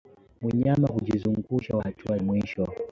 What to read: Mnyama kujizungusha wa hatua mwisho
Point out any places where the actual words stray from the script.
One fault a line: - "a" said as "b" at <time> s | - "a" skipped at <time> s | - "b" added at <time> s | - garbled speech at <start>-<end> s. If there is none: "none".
none